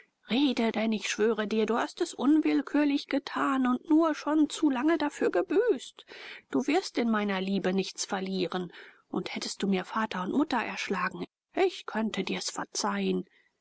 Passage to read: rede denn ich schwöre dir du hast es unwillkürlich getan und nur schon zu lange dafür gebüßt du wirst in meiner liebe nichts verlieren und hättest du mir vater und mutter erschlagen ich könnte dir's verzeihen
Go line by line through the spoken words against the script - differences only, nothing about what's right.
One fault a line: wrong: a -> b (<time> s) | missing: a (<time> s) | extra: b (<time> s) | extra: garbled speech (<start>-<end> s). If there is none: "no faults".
no faults